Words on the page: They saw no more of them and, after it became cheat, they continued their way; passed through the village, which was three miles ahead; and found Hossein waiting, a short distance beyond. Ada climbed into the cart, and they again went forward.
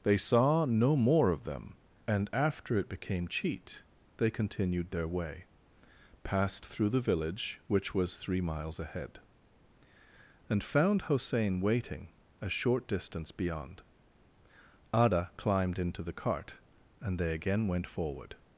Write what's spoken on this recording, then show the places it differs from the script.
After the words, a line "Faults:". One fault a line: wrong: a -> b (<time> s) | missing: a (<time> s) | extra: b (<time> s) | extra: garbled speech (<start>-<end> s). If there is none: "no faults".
They saw no more of them and, after it became cheat, they continued their way; passed through the village, which was three miles ahead; and found Hossein waiting, a short distance beyond. Ada climbed into the cart, and they again went forward.
Faults:
no faults